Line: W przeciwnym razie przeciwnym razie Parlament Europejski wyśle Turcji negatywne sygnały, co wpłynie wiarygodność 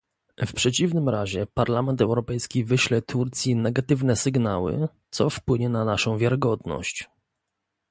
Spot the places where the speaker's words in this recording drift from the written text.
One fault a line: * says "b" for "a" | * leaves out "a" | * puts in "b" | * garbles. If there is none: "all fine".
* leaves out "przeciwnym razie"
* puts in "na naszą"